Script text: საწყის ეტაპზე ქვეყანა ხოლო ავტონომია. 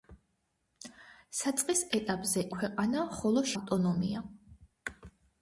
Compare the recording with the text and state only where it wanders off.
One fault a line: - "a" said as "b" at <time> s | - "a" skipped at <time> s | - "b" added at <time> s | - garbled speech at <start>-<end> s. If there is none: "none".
none